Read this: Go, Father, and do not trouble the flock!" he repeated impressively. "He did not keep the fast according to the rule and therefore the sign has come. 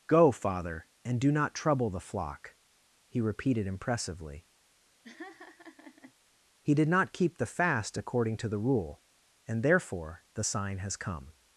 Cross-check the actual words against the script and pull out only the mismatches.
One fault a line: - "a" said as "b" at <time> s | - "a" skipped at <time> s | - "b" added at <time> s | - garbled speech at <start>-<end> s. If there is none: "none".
none